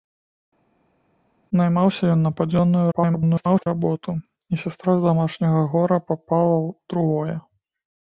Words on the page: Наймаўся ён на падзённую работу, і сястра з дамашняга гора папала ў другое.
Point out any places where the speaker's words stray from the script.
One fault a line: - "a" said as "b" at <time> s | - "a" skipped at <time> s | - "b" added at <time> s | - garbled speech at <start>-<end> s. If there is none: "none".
- garbled speech at 2.9-3.7 s